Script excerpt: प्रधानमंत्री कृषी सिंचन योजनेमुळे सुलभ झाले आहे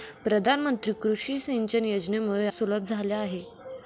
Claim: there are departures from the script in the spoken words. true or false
false